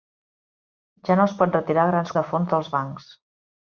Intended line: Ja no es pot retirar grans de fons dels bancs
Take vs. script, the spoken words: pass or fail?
pass